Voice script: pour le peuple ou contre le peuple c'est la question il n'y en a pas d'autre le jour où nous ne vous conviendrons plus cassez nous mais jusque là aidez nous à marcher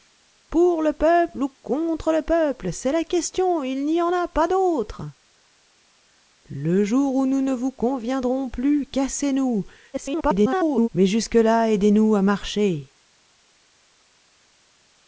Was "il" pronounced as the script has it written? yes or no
yes